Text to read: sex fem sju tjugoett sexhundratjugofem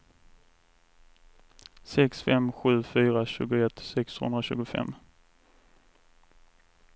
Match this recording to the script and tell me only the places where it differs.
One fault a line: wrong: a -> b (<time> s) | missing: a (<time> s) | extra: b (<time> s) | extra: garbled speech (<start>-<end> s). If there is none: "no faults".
extra: fyra (2.8 s)